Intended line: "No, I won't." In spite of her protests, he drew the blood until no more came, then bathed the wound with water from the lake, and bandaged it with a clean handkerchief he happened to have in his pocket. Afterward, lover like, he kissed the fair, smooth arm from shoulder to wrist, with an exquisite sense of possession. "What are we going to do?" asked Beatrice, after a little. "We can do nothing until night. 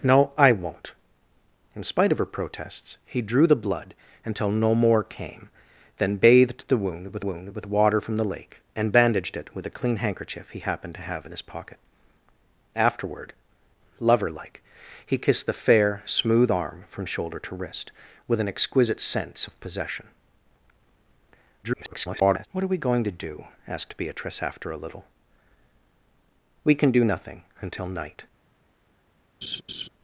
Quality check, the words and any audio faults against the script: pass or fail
fail